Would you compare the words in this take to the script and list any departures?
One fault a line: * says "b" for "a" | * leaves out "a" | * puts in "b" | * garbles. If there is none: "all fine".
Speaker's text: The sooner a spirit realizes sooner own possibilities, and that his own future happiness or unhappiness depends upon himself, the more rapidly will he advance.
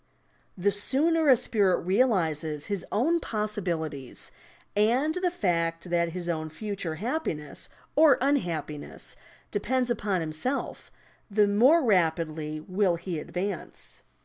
* says "his" for "sooner"
* puts in "the fact"